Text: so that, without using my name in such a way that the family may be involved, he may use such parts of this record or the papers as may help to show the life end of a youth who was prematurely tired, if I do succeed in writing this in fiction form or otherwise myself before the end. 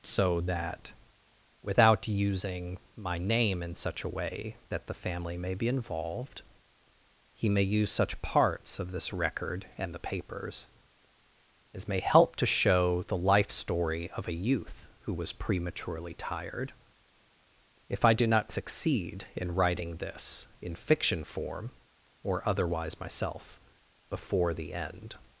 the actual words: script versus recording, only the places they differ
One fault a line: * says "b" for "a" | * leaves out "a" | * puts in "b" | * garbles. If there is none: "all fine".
* says "and" for "or"
* says "story" for "end"
* puts in "not"